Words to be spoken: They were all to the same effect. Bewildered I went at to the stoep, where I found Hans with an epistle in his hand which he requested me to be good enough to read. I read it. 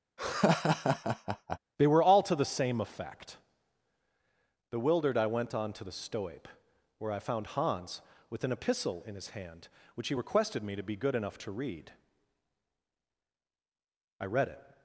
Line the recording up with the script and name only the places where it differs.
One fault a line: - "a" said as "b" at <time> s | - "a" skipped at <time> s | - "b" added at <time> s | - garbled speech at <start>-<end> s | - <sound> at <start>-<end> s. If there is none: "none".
- laugh at 0.2-1.6 s
- "at" said as "on" at 5.5 s